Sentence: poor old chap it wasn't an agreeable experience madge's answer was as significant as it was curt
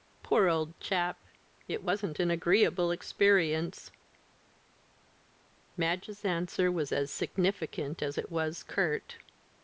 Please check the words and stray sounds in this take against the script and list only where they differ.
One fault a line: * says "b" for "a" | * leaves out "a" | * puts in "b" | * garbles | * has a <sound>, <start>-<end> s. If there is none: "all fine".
all fine